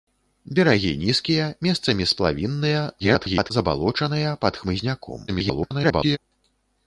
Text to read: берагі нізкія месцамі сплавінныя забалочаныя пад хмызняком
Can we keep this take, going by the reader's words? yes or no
no